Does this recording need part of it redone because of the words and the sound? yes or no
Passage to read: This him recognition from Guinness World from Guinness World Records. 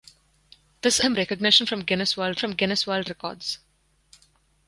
no